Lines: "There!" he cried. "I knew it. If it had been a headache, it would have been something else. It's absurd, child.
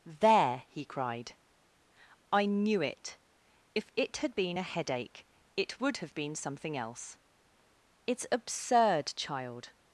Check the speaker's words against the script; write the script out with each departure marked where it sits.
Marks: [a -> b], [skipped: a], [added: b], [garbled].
"There!" he cried. "I knew it. If it had been a headache, it would have been something else. It's absurd, child.